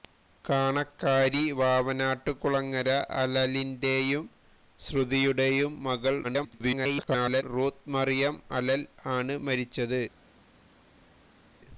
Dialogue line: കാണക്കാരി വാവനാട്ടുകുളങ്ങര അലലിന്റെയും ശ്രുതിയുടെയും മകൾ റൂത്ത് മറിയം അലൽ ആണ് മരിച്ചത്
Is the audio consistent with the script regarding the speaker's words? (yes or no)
no